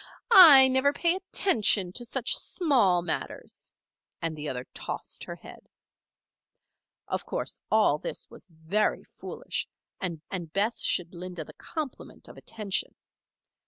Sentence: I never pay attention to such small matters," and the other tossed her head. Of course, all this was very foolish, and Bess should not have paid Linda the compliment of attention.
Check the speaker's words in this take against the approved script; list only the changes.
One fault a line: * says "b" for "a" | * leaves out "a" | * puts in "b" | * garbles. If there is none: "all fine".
* puts in "and"
* leaves out "not have paid"